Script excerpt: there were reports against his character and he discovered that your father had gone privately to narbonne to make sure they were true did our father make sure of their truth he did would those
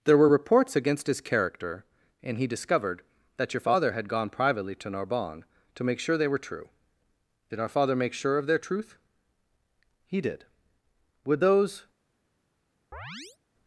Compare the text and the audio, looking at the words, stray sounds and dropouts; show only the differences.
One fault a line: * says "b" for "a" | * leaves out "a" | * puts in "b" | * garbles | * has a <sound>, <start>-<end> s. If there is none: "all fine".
* has a chirp, 12.9-13.4 s